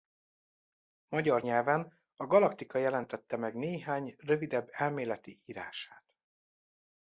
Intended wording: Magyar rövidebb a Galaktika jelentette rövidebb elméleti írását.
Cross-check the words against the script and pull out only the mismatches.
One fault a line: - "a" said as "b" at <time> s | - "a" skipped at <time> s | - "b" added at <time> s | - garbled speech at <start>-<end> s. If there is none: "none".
- "rövidebb" said as "nyelven" at 1.4 s
- "meg néhány" added at 3.4 s